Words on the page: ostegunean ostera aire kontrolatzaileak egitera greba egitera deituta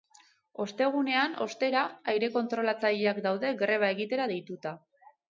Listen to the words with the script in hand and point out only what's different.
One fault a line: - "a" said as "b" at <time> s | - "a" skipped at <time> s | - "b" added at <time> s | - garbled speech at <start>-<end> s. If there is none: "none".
- "egitera" said as "daude" at 3.3 s